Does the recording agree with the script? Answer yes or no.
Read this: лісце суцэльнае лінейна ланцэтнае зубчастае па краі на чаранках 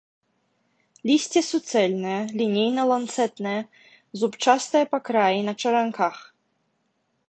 yes